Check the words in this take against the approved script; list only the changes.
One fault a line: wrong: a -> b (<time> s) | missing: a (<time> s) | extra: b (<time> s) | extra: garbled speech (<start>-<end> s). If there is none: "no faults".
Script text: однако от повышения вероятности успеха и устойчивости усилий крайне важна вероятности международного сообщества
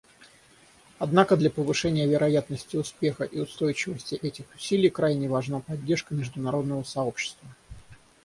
wrong: от -> для (1.4 s)
extra: этих (4.2 s)
wrong: вероятности -> поддержка (5.6 s)